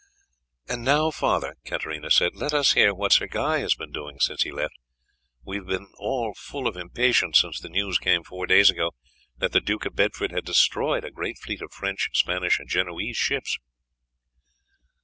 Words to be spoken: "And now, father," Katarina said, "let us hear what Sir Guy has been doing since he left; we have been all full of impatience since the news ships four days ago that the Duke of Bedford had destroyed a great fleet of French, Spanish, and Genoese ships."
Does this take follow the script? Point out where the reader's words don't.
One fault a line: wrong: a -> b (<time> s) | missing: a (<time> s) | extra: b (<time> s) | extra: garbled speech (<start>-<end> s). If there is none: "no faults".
wrong: ships -> came (8.0 s)